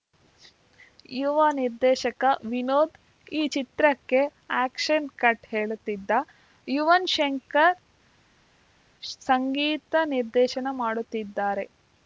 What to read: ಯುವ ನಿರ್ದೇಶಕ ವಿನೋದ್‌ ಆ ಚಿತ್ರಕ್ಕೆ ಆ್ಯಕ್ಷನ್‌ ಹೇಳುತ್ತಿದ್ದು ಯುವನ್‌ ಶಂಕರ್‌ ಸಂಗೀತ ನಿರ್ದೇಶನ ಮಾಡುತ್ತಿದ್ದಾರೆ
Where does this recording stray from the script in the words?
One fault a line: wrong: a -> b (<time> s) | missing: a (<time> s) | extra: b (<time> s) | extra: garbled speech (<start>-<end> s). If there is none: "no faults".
wrong: ಆ -> ಈ (3.3 s)
extra: ಕಟ್ (5.2 s)